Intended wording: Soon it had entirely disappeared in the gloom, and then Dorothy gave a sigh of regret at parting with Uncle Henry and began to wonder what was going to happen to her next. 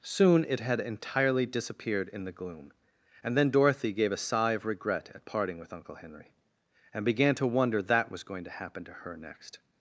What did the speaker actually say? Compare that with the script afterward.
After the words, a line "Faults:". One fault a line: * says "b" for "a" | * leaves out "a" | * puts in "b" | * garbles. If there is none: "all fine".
Soon it had entirely disappeared in the gloom, and then Dorothy gave a sigh of regret at parting with Uncle Henry and began to wonder that was going to happen to her next.
Faults:
* says "that" for "what"